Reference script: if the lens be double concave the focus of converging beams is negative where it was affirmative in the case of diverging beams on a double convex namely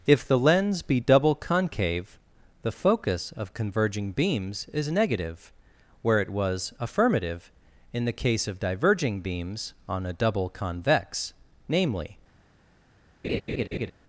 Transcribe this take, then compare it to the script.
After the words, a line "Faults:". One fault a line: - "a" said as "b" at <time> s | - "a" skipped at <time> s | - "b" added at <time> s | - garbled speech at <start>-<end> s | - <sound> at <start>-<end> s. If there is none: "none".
if the lens be double concave the focus of converging beams is negative where it was affirmative in the case of diverging beams on a double convex namely
Faults:
- laugh at 13.2-13.9 s